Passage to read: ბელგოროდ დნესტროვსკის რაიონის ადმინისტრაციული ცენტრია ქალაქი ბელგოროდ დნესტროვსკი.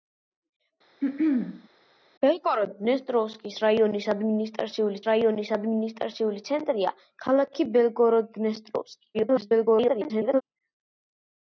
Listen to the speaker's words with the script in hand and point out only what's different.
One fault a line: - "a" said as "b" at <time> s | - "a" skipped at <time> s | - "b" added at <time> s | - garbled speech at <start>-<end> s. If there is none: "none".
- "რაიონის ადმინისტრაციული" added at 5.1 s
- garbled speech at 9.1-10.4 s